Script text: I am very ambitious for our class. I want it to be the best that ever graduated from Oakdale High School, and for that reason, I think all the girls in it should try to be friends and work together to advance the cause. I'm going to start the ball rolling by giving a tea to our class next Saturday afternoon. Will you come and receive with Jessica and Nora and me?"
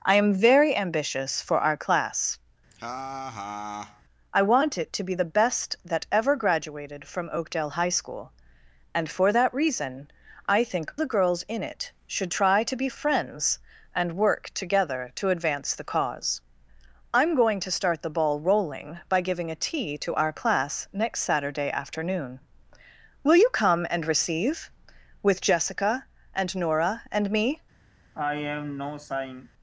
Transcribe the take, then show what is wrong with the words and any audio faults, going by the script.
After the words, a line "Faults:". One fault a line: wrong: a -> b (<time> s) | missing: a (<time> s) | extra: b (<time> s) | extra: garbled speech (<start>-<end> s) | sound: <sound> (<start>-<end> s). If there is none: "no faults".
I am very ambitious for our class. I want it to be the best that ever graduated from Oakdale High School, and for that reason, I think the girls in it should try to be friends and work together to advance the cause. I'm going to start the ball rolling by giving a tea to our class next Saturday afternoon. Will you come and receive with Jessica and Nora and me?"
Faults:
sound: laugh (2.7-4.0 s)
missing: all (10.9 s)
sound: sigh (28.1-29.5 s)